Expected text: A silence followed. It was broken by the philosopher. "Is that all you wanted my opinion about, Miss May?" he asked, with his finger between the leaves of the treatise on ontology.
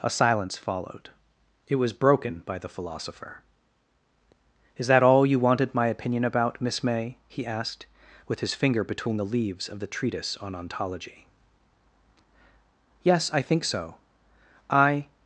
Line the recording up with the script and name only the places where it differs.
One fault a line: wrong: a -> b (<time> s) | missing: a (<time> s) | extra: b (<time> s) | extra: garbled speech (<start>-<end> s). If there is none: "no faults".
extra: Yes I think so I (13.0 s)